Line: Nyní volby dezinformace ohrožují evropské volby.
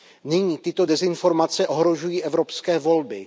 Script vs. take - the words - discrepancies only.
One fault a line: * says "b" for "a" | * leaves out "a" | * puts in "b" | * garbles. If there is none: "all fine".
* says "tyto" for "volby"